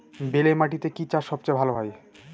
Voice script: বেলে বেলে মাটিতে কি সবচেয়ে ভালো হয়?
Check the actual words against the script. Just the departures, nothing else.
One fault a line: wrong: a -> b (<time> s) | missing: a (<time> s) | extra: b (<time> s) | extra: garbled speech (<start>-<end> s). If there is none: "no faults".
missing: বেলে (0.5 s)
extra: চাষ (1.1 s)